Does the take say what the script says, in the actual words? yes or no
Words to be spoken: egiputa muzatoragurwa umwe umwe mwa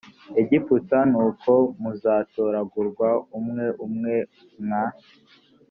no